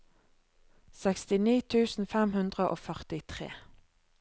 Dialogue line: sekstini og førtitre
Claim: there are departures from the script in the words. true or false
true